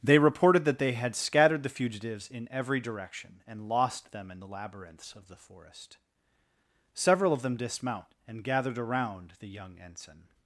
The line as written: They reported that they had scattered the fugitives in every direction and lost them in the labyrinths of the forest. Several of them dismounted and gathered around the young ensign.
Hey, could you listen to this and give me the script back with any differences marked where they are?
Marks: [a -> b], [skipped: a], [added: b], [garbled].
They reported that they had scattered the fugitives in every direction and lost them in the labyrinths of the forest. Several of them [dismounted -> dismount] and gathered around the young ensign.